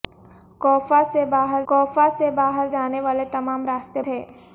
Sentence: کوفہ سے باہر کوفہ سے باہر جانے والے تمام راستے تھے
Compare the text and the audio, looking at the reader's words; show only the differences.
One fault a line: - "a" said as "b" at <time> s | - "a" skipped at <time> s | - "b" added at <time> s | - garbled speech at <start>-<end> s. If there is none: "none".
none